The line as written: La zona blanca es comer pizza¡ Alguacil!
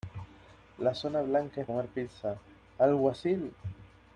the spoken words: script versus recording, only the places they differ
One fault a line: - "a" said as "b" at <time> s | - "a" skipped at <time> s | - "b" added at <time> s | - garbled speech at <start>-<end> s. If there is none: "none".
none